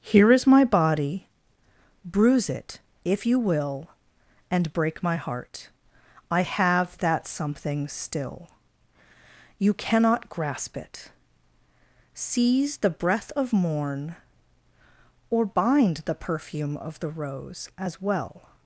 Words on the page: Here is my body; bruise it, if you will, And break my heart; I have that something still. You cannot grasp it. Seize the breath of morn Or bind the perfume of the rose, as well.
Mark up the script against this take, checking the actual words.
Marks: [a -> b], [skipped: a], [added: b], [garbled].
Here is my body; bruise it, if you will, And break my heart; I have that something still. You cannot grasp it. Seize the breath of morn Or bind the perfume of the rose, as well.